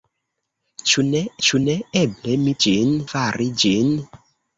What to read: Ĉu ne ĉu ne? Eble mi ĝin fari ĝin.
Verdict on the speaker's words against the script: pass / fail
pass